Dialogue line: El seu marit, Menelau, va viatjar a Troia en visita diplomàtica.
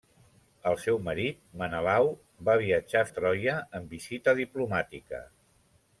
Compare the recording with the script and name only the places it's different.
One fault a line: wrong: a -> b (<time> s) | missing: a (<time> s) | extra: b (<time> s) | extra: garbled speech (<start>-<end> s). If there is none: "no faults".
no faults